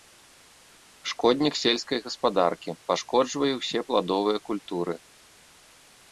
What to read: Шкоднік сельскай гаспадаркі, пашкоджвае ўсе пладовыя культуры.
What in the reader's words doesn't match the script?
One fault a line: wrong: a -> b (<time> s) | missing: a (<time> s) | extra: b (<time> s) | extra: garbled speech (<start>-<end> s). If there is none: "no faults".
no faults